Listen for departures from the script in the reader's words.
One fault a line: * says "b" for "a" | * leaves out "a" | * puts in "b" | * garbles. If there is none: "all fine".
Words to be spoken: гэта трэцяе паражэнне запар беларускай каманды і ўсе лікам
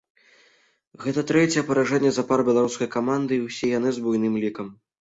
* puts in "яны з буйным"